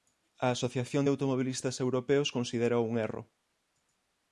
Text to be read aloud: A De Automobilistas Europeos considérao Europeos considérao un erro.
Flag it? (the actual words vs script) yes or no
yes